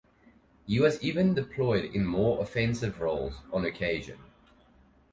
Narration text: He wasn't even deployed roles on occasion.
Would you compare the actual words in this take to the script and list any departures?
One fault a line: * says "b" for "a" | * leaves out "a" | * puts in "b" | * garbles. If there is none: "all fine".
* says "was" for "wasn't"
* puts in "in more offensive"